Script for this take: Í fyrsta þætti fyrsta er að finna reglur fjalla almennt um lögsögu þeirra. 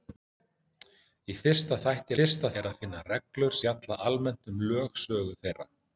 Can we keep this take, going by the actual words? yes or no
yes